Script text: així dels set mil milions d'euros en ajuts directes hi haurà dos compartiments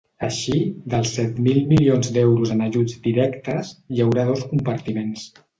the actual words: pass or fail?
pass